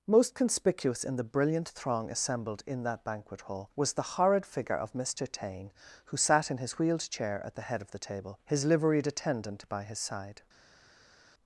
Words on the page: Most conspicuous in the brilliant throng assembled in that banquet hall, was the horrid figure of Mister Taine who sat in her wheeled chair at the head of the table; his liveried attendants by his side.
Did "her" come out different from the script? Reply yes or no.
yes